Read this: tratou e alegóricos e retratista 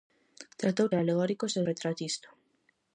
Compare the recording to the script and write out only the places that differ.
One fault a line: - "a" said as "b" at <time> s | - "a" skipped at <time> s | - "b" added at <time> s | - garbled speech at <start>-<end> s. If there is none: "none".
none